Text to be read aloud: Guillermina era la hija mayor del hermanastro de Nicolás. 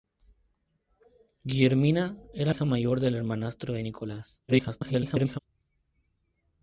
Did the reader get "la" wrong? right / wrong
wrong